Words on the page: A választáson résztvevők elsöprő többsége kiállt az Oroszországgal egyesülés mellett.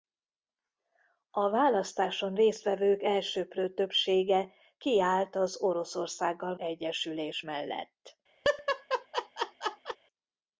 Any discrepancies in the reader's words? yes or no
no